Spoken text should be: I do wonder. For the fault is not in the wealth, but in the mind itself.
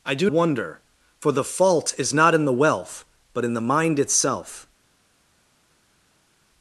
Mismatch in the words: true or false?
false